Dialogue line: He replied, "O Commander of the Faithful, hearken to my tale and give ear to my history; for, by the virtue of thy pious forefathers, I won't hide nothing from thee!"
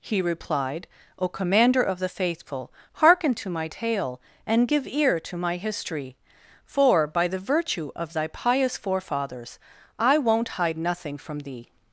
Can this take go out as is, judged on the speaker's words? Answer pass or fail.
pass